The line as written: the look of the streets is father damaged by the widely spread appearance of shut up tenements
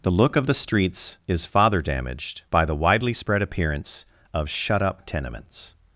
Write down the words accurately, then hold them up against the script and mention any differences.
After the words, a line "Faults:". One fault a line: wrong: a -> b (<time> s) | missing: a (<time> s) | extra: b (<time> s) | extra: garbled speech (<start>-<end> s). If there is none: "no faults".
the look of the streets is father damaged by the widely spread appearance of shut up tenements
Faults:
no faults